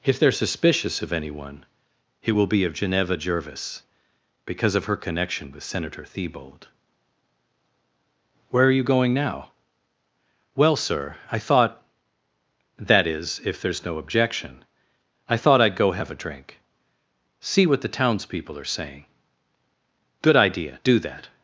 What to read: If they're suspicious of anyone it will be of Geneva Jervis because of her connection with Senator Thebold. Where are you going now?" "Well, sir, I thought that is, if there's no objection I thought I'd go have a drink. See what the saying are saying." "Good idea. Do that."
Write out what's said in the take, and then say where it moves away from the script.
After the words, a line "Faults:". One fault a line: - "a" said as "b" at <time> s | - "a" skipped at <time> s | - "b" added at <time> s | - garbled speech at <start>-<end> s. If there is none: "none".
If they're suspicious of anyone it will be of Geneva Jervis because of her connection with Senator Thebold. Where are you going now?" "Well, sir, I thought that is, if there's no objection I thought I'd go have a drink. See what the townspeople are saying." "Good idea. Do that."
Faults:
- "saying" said as "townspeople" at 18.0 s